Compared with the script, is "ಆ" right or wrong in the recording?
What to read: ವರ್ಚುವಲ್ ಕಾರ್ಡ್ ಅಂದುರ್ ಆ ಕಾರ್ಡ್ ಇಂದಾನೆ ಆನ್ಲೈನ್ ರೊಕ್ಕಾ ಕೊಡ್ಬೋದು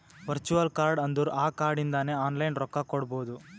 right